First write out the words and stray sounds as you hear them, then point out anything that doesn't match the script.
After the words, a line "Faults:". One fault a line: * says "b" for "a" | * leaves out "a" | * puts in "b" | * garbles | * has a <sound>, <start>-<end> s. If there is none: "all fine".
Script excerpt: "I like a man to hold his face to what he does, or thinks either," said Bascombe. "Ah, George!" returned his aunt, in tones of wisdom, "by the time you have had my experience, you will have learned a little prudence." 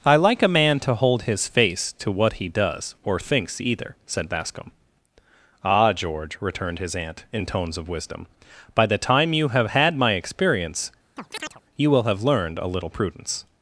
"I like a man to hold his face to what he does, or thinks either," said Bascombe. "Ah, George!" returned his aunt, in tones of wisdom, "by the time you have had my experience, you will have learned a little prudence."
Faults:
* has a chirp, 11.2-11.6 s